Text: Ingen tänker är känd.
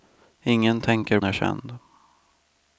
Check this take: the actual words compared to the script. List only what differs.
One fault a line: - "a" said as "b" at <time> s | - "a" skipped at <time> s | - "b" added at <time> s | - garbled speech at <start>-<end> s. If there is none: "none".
none